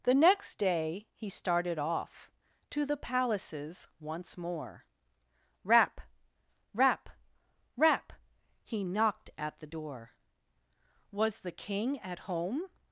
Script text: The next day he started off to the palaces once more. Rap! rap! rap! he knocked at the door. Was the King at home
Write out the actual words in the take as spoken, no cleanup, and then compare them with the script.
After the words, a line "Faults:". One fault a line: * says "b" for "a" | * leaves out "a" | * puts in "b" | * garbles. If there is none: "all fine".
The next day he started off to the palaces once more. Rap! rap! rap! he knocked at the door. Was the King at home
Faults:
all fine